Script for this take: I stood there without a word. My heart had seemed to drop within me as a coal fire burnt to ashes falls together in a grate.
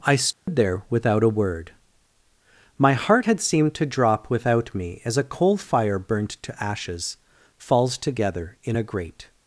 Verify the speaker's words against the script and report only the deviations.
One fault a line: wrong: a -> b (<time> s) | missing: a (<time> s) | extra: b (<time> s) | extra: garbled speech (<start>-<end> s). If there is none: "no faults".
wrong: within -> without (4.3 s)